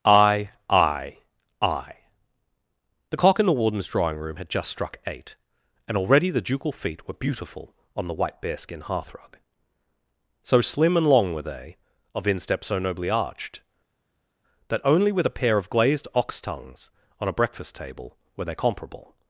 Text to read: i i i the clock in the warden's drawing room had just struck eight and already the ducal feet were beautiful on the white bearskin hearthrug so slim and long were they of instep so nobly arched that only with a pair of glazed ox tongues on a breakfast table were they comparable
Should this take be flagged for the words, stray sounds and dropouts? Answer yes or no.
no